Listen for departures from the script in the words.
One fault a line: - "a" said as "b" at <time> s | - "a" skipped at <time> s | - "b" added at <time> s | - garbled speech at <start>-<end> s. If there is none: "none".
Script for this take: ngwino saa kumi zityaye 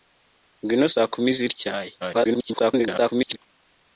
- garbled speech at 2.0-3.4 s